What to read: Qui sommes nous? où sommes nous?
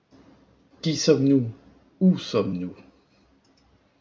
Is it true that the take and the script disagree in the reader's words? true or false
false